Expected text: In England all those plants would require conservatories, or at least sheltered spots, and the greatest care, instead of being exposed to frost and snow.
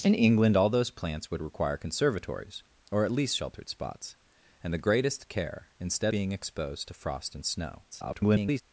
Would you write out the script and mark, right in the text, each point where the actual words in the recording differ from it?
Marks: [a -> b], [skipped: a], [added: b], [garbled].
In England all those plants would require conservatories, or at least sheltered spots, and the greatest care, instead [skipped: of] being exposed to frost and snow. [garbled]